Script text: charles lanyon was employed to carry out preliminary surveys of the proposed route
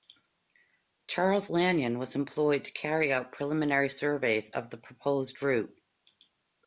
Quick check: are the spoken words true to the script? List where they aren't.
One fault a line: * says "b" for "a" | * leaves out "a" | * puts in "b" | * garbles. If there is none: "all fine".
all fine